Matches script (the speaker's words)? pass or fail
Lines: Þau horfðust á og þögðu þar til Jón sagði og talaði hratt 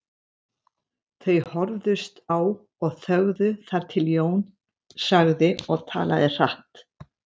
pass